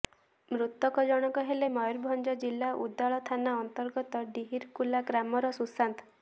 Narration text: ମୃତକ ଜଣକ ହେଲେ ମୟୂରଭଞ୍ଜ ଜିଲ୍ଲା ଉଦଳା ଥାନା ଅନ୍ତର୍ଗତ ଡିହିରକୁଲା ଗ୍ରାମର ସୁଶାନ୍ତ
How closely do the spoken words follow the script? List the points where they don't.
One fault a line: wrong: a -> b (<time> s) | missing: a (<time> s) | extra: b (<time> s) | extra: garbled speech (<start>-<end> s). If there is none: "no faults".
no faults